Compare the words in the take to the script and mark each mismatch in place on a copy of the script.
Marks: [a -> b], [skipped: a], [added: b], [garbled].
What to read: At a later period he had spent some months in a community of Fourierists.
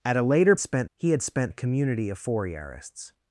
At a later [period -> spent] he had spent [skipped: some months in] a community of Fourierists.